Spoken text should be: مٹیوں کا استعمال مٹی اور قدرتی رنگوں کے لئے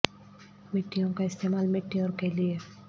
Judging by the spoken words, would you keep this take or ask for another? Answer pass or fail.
fail